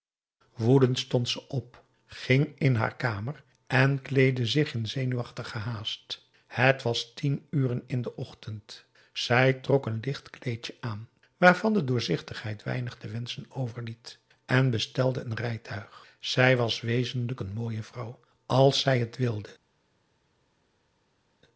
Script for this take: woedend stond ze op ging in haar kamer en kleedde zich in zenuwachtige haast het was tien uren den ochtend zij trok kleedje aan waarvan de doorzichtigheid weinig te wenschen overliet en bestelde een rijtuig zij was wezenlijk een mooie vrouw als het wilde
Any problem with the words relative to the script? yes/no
yes